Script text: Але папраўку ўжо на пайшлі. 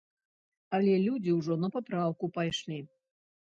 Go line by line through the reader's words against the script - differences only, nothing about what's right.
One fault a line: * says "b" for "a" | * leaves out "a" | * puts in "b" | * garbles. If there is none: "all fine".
* says "людзі" for "папраўку"
* puts in "папраўку"